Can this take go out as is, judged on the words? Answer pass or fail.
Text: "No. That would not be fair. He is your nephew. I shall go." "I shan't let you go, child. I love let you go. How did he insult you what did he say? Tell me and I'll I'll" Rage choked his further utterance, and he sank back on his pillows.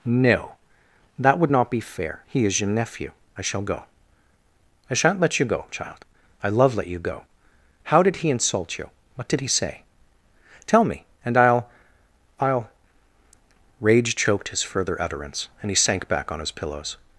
pass